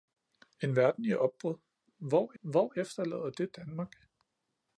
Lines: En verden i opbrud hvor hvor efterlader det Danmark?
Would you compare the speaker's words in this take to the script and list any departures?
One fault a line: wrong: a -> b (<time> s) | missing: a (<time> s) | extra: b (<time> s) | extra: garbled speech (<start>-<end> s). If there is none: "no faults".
no faults